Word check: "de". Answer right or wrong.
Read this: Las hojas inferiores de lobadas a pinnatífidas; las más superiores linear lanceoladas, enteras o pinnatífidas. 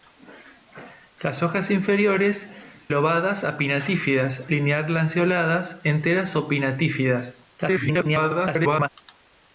wrong